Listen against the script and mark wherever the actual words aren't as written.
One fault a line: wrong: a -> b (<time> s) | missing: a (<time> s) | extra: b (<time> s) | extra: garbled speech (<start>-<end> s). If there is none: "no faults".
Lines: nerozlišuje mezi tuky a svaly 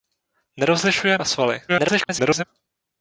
missing: mezi tuky (1.2 s)
extra: garbled speech (1.7-2.5 s)